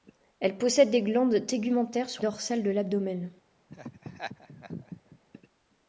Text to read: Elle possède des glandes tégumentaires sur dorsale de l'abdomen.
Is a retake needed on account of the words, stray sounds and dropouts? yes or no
yes